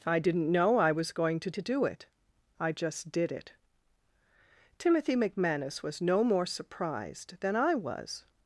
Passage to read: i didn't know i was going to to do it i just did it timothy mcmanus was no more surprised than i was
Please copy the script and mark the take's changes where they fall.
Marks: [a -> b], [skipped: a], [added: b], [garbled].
i didn't know i was going to to do it i just did it timothy mcmanus was no more surprised than i was